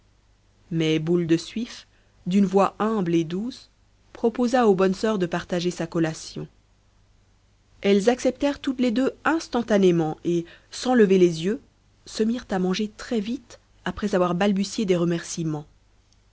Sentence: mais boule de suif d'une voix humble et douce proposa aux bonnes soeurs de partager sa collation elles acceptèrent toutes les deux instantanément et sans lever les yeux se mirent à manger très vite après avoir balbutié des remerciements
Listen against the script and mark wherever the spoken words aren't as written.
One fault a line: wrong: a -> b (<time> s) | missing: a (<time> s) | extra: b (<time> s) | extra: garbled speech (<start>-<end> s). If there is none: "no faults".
no faults